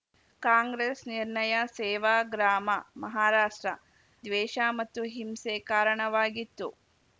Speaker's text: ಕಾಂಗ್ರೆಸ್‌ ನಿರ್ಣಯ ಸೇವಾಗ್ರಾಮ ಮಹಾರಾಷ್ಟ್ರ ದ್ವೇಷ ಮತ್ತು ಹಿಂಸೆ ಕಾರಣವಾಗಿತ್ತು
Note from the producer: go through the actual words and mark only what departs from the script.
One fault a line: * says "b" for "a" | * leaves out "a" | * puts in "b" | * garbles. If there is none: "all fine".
all fine